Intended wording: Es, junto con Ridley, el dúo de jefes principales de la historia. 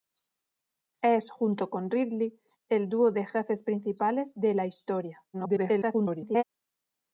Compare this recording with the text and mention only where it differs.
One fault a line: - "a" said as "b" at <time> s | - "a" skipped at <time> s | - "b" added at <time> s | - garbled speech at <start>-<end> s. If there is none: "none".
- garbled speech at 5.3-6.4 s